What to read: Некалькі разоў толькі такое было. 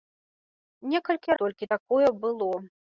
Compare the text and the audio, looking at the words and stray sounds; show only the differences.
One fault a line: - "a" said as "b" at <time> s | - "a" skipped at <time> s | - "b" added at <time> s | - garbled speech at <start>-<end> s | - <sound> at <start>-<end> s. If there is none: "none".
- "разоў" skipped at 1.4 s